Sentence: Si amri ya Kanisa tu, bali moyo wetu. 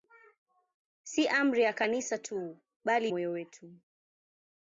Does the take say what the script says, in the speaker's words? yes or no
yes